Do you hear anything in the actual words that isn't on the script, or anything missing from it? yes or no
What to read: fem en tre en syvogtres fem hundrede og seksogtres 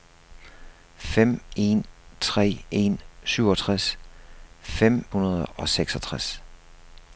no